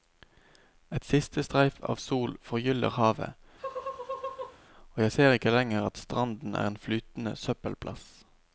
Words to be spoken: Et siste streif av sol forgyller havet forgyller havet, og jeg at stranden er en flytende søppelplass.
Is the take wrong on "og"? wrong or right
wrong